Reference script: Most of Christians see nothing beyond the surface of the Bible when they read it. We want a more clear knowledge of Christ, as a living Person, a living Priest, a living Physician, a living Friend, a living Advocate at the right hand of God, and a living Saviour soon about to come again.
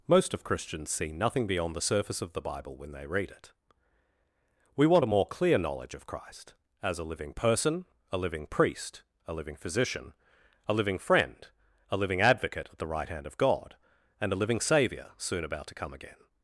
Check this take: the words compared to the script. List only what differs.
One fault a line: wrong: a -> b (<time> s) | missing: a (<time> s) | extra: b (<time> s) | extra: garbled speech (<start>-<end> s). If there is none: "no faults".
no faults